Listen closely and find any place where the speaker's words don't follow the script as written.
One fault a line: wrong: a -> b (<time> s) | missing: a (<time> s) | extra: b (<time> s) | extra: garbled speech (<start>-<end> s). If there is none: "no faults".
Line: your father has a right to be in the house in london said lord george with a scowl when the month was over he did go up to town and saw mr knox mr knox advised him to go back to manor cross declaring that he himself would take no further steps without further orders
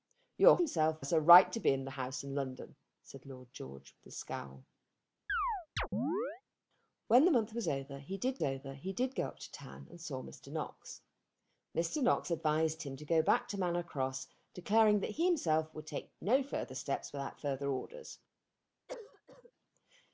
wrong: father -> himself (0.6 s)
extra: over he did (8.4 s)